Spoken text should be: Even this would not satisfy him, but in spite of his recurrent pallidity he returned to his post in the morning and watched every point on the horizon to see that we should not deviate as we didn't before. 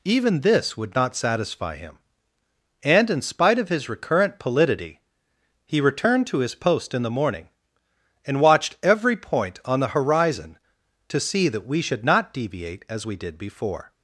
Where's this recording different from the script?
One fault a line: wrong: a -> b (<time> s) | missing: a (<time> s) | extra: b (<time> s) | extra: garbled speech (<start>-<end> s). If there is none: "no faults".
wrong: but -> and (2.8 s)
wrong: didn't -> did (13.2 s)